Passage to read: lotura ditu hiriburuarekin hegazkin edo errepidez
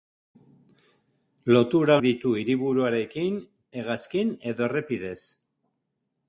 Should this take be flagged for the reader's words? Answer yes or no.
no